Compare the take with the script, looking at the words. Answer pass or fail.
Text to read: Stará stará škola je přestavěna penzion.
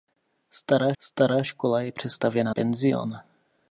pass